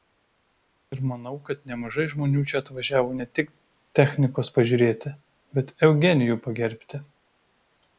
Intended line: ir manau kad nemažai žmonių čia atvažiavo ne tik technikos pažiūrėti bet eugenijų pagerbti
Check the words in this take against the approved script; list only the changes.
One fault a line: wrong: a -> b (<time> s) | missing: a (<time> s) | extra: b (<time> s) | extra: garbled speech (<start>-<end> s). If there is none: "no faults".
no faults